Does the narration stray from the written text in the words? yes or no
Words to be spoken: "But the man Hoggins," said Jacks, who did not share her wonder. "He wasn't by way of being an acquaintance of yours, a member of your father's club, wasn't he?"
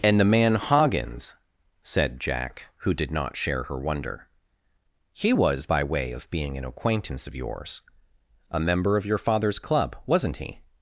yes